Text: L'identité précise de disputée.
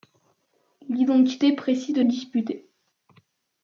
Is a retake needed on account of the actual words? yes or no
no